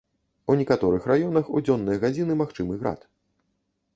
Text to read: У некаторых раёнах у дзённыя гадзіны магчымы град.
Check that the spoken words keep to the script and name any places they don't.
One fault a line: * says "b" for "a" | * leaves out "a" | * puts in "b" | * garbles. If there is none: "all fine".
all fine